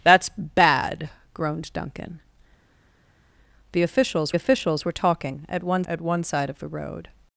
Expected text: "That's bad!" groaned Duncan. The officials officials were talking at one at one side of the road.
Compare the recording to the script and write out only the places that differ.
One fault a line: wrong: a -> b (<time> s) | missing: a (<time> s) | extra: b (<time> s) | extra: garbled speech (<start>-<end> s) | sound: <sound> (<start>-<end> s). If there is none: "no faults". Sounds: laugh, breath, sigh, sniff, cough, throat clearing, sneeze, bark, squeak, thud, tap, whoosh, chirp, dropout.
no faults